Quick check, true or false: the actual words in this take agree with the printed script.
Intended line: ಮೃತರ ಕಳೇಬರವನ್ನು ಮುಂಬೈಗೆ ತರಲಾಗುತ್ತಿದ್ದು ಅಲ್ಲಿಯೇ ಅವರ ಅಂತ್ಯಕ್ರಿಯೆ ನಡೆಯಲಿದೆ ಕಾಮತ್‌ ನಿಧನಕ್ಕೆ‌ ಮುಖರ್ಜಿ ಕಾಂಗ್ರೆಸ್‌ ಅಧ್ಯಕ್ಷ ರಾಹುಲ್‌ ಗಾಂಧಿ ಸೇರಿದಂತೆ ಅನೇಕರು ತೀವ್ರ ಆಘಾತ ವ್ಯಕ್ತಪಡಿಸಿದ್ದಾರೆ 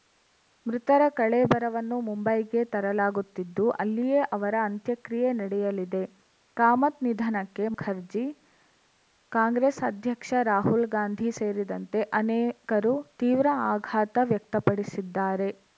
true